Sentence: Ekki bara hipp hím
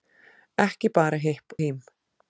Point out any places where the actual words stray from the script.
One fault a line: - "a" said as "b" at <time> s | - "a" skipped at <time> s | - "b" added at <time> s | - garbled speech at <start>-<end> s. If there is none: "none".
none